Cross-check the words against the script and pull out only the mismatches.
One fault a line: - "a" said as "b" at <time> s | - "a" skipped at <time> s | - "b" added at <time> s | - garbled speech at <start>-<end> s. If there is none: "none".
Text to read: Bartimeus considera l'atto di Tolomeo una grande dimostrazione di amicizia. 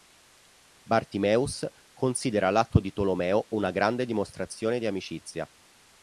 none